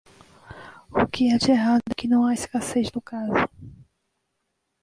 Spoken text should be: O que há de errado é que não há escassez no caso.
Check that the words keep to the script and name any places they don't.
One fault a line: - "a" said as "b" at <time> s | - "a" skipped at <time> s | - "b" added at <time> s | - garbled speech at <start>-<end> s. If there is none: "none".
none